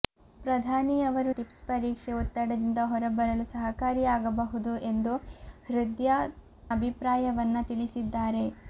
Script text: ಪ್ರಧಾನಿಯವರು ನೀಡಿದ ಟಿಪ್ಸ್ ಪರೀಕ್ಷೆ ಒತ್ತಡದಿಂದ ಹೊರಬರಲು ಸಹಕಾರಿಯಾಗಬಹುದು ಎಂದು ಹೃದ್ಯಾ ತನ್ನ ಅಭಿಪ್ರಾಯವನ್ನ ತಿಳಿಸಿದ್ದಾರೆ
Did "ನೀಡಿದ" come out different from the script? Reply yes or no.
yes